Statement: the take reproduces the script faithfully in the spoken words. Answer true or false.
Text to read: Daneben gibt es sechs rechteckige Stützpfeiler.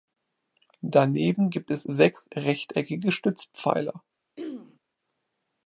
true